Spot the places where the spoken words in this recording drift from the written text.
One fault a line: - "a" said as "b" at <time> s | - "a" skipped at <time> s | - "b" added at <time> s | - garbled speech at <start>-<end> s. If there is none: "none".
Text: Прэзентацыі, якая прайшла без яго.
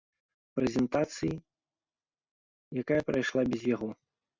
none